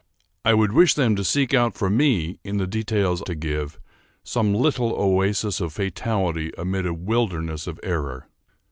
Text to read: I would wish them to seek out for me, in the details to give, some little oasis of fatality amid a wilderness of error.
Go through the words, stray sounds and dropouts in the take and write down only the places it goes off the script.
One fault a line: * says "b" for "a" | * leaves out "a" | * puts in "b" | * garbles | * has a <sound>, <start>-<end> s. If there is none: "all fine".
all fine